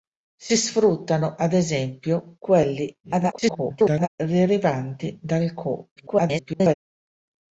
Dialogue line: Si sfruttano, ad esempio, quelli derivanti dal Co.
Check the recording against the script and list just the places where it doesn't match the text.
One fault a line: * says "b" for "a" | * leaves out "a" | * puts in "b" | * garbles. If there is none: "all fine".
* garbles
* garbles